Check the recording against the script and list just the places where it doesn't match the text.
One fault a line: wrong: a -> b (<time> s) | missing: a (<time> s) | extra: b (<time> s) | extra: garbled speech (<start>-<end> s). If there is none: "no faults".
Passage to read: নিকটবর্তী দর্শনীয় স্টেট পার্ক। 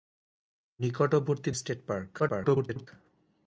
missing: দর্শনীয় (1.5 s)
extra: garbled speech (2.2-2.9 s)